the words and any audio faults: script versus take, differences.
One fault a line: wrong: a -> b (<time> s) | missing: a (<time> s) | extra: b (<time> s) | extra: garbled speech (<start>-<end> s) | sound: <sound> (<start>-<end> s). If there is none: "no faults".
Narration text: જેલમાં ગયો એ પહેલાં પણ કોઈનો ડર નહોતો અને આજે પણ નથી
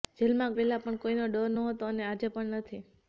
missing: ગયો એ (0.6 s)